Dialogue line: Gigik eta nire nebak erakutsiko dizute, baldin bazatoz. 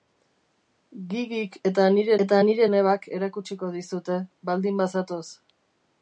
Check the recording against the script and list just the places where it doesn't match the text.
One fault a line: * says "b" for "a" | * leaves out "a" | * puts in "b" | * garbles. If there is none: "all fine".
* puts in "eta nire"